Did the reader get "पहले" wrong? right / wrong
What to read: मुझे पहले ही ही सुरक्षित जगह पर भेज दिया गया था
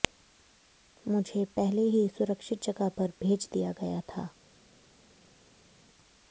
right